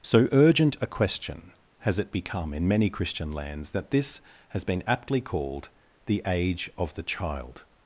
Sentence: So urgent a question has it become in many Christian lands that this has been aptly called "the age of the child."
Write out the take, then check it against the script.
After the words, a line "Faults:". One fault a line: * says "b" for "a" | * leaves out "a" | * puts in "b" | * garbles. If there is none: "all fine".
So urgent a question has it become in many Christian lands that this has been aptly called "the age of the child."
Faults:
all fine